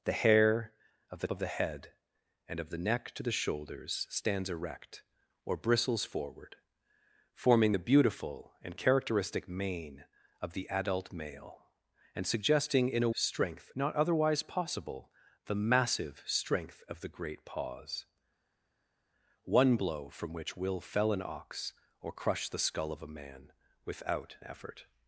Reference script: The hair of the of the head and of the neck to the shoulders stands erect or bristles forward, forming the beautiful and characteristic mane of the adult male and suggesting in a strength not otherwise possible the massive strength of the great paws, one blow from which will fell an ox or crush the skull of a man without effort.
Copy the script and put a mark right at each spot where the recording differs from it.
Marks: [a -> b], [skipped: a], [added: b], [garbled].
The hair of the of the head and of the neck to the shoulders stands erect or bristles forward, forming the beautiful and characteristic mane of the adult male and suggesting in a strength not otherwise possible the massive strength of the great paws, one blow from which will fell an ox or crush the skull of a man without effort.